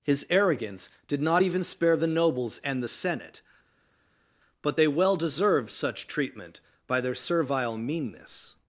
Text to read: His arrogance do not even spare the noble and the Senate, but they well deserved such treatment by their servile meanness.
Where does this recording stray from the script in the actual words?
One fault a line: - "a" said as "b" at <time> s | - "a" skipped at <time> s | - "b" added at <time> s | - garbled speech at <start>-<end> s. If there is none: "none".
- "do" said as "did" at 1.1 s
- "noble" said as "nobles" at 2.1 s